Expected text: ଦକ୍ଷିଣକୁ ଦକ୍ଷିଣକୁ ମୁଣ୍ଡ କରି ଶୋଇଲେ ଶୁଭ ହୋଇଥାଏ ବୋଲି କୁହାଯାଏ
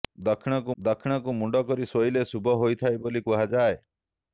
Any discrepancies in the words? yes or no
no